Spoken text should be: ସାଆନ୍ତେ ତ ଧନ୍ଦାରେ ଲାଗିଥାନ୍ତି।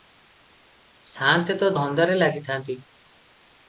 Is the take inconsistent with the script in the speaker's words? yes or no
no